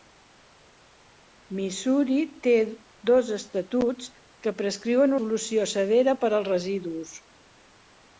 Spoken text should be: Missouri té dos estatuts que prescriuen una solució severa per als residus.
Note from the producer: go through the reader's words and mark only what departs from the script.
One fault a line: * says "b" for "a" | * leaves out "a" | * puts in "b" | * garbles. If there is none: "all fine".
* leaves out "una"